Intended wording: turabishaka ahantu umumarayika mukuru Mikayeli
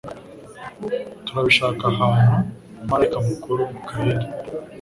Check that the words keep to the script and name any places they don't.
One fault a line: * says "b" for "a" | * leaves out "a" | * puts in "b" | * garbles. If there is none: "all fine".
all fine